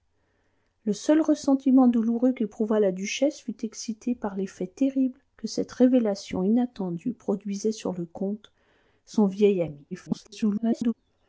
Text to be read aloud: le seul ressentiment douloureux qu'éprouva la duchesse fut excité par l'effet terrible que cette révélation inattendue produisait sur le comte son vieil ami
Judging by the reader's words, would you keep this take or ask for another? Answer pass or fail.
fail